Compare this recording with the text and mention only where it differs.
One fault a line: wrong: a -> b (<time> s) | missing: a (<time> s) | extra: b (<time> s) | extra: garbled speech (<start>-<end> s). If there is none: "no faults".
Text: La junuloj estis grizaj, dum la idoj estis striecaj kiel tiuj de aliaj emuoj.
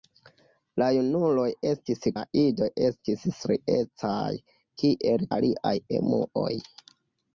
missing: grizaj dum (2.0 s)
missing: tiuj de (5.3 s)